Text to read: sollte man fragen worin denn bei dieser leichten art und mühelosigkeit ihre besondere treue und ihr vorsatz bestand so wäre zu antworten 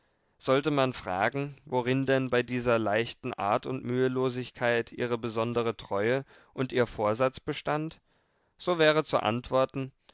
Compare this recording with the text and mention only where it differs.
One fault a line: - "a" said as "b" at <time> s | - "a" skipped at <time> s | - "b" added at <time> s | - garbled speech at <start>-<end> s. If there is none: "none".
none